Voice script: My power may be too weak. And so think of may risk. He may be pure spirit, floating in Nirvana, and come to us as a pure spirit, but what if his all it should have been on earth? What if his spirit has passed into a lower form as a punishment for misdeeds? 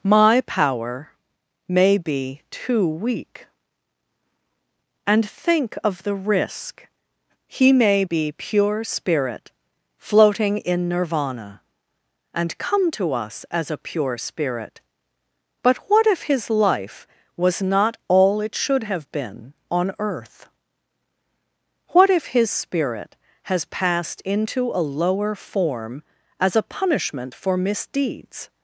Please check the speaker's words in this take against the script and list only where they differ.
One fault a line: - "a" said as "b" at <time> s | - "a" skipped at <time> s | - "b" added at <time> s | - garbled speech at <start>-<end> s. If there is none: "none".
- "so" skipped at 5.3 s
- "may" said as "the" at 6.0 s
- "life was not" added at 16.5 s